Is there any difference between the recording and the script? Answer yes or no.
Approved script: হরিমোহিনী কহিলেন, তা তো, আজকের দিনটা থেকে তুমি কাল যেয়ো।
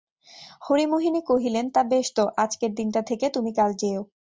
yes